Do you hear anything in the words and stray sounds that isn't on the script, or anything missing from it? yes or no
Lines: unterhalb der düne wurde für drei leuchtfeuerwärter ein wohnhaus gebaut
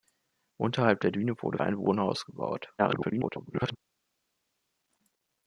yes